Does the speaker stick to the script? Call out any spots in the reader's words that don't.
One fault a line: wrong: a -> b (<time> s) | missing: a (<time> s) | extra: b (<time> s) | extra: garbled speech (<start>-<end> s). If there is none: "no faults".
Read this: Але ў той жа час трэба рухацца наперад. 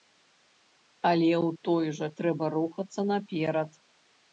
missing: час (2.1 s)